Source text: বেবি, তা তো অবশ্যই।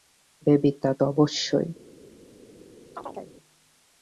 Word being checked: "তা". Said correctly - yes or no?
yes